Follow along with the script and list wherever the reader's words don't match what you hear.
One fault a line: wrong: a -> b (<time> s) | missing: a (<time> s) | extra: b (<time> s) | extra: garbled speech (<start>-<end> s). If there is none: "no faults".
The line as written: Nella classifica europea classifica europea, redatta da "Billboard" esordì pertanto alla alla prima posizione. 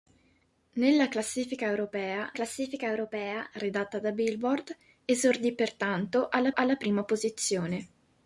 no faults